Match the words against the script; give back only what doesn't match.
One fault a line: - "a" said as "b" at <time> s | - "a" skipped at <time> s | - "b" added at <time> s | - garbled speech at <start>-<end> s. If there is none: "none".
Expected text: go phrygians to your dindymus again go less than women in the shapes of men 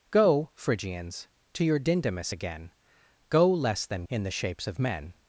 - "women" skipped at 4.1 s